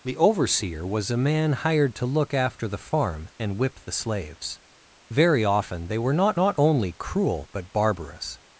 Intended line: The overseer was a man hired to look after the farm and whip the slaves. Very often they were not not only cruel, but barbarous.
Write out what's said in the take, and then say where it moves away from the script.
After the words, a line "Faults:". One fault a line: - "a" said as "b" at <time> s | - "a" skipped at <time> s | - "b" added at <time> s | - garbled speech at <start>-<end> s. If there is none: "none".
The overseer was a man hired to look after the farm and whip the slaves. Very often they were not not only cruel, but barbarous.
Faults:
none